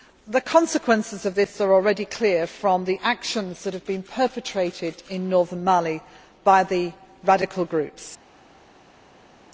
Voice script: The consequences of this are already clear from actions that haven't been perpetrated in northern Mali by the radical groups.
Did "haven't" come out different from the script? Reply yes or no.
yes